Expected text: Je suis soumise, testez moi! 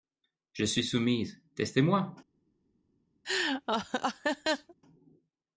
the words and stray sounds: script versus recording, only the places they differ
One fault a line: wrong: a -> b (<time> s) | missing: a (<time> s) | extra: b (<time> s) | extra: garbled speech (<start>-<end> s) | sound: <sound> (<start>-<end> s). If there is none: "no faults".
sound: laugh (3.2-4.7 s)